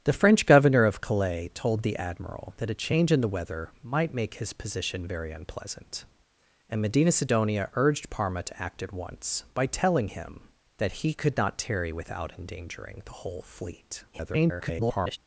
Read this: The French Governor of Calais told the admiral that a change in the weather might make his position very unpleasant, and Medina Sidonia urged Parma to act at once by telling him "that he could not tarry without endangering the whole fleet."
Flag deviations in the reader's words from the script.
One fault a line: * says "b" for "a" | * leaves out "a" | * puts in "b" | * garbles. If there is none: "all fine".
* garbles